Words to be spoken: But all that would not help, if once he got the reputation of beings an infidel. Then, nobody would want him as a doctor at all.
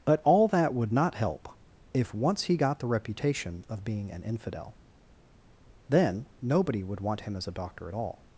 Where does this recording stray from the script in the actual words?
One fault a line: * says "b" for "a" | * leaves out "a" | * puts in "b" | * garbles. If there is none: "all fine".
* says "being" for "beings"